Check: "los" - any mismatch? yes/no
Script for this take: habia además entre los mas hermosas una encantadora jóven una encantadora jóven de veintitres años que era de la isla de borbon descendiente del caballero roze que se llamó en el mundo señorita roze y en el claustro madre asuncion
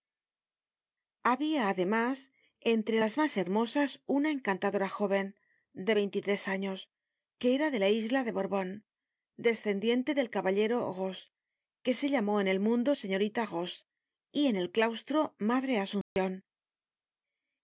yes